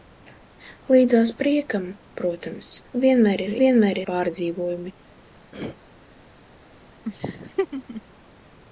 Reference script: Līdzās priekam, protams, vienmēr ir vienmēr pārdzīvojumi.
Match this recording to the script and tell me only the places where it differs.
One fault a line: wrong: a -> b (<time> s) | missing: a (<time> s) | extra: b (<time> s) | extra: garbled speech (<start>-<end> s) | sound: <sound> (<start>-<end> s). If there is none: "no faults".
sound: throat clearing (5.5-5.8 s)
sound: laugh (7.0-8.0 s)